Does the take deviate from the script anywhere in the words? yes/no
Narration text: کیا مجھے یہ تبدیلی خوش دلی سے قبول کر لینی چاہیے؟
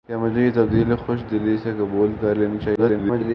yes